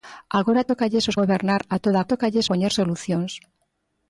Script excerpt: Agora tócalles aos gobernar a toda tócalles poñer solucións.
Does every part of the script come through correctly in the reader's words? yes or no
yes